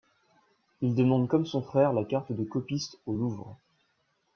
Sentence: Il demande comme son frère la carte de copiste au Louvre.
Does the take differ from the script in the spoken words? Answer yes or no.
no